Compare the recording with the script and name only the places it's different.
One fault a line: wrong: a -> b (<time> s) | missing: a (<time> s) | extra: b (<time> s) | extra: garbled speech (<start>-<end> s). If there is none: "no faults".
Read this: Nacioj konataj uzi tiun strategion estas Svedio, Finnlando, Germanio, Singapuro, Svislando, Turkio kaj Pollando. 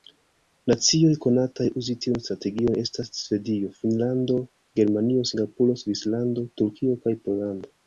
no faults